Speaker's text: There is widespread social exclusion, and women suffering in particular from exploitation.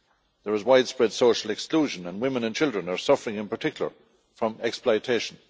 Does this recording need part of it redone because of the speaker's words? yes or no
yes